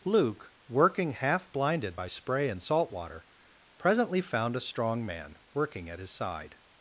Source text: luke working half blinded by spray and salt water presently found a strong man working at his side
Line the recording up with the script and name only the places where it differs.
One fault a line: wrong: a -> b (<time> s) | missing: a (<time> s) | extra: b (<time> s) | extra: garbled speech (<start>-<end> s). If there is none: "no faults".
no faults